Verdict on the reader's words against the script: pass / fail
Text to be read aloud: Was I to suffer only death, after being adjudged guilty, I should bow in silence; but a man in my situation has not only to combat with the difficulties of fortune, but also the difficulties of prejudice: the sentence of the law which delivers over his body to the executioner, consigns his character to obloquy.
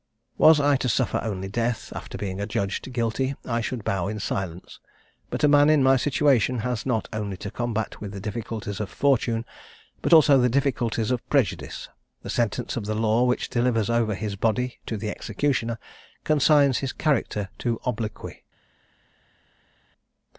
pass